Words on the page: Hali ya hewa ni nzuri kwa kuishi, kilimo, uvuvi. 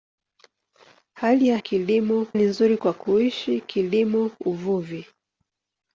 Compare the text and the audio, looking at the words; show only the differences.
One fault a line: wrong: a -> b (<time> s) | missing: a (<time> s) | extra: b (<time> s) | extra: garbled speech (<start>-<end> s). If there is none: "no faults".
wrong: hewa -> kilimo (1.6 s)